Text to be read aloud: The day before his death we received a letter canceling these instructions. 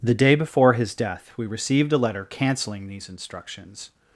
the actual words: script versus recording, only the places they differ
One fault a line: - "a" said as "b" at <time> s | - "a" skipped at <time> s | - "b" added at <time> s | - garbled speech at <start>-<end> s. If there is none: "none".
none